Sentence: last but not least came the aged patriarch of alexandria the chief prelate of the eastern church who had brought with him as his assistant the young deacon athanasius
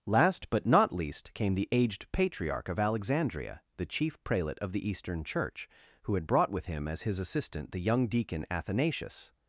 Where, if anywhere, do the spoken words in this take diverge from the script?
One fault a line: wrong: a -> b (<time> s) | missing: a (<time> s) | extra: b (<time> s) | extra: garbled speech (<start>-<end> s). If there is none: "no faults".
no faults